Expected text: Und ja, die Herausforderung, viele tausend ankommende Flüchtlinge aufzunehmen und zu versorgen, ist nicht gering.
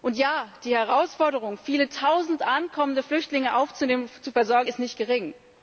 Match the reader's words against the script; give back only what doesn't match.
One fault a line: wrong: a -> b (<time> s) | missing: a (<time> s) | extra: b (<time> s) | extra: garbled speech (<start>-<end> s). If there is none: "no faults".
no faults